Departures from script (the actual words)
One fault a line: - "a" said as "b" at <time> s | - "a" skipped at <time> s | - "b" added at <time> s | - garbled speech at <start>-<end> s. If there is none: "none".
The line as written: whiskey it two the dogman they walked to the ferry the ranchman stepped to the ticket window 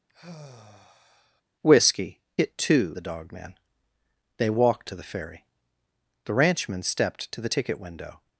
none